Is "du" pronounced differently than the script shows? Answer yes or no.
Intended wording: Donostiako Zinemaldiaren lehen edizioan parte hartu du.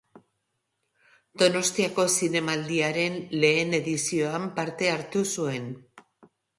yes